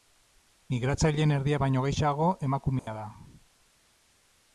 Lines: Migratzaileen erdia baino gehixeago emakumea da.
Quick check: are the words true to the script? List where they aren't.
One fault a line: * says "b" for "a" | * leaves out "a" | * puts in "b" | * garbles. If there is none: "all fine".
all fine